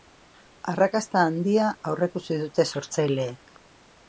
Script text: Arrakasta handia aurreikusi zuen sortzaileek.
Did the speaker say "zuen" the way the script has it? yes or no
no